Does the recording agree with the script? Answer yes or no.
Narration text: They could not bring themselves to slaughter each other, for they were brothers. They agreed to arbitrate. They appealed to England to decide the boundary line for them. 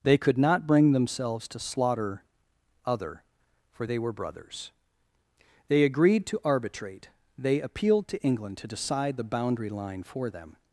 no